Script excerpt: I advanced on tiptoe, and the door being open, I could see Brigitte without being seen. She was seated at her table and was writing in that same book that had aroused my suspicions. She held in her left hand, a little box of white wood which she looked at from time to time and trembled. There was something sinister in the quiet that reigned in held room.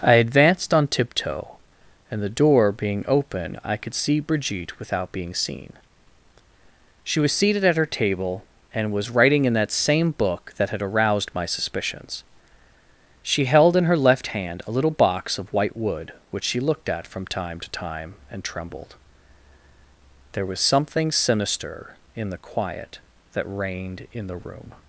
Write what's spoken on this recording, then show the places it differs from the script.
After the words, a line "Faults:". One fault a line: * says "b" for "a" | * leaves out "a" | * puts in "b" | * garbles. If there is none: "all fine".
I advanced on tiptoe, and the door being open, I could see Brigitte without being seen. She was seated at her table and was writing in that same book that had aroused my suspicions. She held in her left hand, a little box of white wood which she looked at from time to time and trembled. There was something sinister in the quiet that reigned in the room.
Faults:
* says "the" for "held"